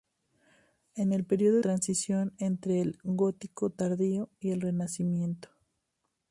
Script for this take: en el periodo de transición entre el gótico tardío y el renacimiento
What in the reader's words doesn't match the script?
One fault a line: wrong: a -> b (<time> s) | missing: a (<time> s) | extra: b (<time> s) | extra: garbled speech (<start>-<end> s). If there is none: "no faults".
missing: de (1.6 s)